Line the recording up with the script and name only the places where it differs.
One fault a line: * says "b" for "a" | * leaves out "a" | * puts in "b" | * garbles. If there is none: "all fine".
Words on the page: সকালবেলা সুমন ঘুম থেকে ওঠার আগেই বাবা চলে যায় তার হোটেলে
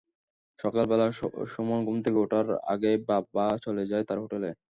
all fine